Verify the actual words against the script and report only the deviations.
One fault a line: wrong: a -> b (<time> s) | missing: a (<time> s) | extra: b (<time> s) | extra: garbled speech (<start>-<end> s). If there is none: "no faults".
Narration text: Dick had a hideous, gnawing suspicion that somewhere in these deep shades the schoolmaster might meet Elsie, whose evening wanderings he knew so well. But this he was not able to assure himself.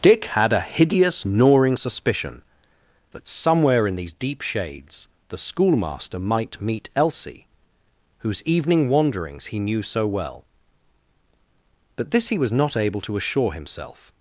no faults